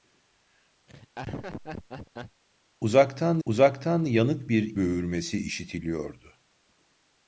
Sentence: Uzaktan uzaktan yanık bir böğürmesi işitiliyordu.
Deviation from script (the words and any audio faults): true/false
true